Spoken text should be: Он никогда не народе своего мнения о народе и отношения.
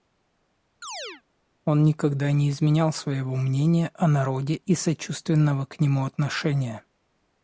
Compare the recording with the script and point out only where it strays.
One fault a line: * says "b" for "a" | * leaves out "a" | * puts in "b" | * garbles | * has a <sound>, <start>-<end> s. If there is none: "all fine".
* has a chirp, 0.8-1.2 s
* says "изменял" for "народе"
* puts in "сочувственного к нему"